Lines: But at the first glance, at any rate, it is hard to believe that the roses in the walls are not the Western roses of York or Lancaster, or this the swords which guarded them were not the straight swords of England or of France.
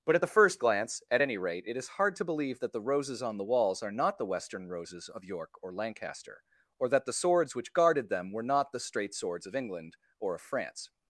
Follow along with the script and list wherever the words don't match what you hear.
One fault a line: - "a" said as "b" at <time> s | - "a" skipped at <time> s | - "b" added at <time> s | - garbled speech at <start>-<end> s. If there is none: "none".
- "in" said as "on" at 3.2 s
- "this" said as "that" at 6.9 s